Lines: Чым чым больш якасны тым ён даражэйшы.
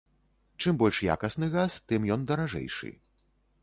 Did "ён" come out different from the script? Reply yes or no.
no